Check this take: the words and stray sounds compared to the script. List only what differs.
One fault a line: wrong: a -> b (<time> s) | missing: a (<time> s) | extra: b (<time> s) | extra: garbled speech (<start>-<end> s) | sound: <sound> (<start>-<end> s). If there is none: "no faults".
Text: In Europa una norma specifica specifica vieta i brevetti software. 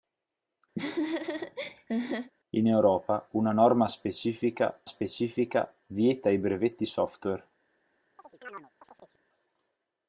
sound: laugh (0.8-2.3 s)
sound: chirp (8.2-9.2 s)